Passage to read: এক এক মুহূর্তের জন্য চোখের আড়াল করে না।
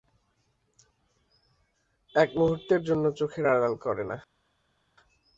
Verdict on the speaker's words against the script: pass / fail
fail